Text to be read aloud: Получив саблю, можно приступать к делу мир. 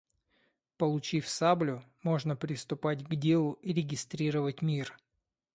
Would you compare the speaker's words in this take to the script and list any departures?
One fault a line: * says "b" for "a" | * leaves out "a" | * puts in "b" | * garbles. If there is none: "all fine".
* puts in "и регистрировать"